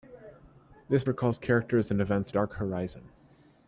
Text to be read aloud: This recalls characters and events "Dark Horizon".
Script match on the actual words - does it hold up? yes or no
yes